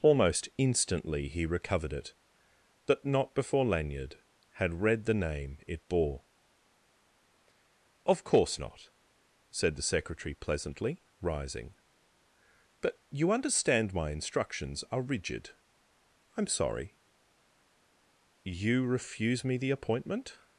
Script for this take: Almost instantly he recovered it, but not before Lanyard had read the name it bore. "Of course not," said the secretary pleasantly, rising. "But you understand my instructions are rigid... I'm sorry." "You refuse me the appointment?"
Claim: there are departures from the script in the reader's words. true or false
false